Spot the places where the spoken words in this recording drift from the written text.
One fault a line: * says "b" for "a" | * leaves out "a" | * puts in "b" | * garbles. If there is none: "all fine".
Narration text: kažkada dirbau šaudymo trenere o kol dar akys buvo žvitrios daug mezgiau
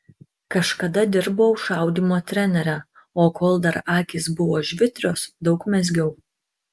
all fine